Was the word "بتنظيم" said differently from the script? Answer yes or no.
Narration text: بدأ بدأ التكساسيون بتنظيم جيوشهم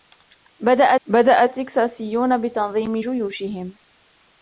no